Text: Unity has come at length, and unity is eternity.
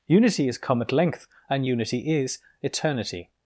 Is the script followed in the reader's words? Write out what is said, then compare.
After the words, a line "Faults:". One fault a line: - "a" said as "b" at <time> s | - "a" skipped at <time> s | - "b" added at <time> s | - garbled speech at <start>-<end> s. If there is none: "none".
Unity is come at length, and unity is eternity.
Faults:
- "has" said as "is" at 0.5 s